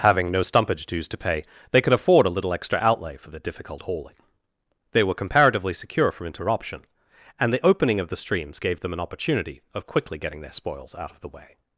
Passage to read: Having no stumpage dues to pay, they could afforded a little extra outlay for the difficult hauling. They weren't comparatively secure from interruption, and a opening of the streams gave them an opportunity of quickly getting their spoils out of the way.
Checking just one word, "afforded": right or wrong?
wrong